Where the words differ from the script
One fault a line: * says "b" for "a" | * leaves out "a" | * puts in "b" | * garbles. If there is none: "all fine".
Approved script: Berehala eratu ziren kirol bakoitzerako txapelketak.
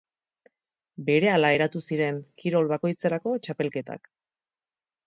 all fine